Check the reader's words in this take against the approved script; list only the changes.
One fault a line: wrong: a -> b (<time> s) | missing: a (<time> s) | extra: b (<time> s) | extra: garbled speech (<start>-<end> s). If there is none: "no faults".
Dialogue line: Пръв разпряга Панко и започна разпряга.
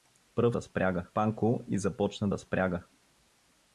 no faults